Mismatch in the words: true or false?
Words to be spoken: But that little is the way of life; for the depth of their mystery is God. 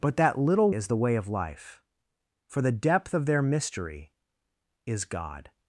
false